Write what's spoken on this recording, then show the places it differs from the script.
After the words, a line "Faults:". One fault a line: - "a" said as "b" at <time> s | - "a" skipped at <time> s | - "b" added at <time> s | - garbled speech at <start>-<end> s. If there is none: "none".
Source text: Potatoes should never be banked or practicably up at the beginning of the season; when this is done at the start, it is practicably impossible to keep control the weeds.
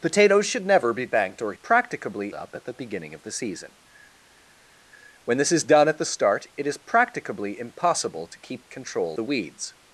Potatoes should never be banked or practicably up at the beginning of the season; when this is done at the start, it is practicably impossible to keep control the weeds.
Faults:
none